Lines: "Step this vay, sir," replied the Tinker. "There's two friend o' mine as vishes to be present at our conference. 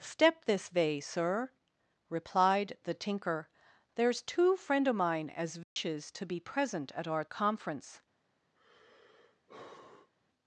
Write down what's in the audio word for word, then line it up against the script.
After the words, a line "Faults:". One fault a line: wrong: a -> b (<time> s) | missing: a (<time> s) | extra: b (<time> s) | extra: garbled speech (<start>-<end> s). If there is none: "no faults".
"Step this vay, sir," replied the Tinker. "There's two friend o' mine as vishes to be present at our conference.
Faults:
no faults